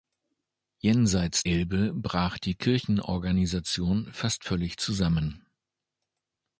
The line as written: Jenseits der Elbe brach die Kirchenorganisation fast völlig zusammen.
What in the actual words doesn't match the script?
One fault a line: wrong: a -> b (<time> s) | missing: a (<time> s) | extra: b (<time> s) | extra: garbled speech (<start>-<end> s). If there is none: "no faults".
missing: der (1.4 s)